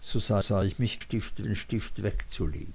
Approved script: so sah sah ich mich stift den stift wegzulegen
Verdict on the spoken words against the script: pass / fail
pass